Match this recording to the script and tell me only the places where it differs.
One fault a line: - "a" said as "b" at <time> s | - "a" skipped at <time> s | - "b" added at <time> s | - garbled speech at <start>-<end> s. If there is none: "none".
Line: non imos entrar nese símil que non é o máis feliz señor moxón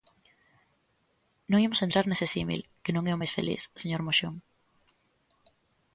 none